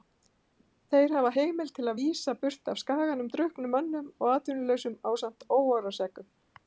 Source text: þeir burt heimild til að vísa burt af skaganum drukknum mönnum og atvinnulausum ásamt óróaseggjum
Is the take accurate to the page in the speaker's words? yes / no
no